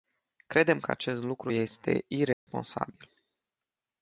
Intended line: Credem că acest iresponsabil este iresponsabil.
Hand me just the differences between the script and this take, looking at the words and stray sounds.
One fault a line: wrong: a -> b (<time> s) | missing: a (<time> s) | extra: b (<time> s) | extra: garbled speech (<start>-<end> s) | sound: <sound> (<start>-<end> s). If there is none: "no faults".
wrong: iresponsabil -> lucru (1.2 s)
sound: dropout (2.3-2.5 s)